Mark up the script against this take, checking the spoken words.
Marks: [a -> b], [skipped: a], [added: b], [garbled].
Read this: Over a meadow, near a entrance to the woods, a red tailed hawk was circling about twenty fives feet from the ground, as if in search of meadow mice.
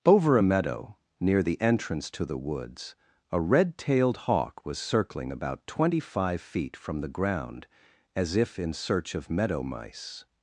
Over a meadow, near [a -> the] entrance to the woods, a red tailed hawk was circling about twenty [fives -> five] feet from the ground, as if in search of meadow mice.